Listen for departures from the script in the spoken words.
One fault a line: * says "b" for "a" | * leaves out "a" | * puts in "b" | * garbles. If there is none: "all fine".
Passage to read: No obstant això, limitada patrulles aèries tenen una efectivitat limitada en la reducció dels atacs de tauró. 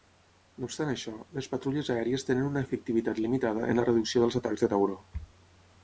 * says "les" for "limitada"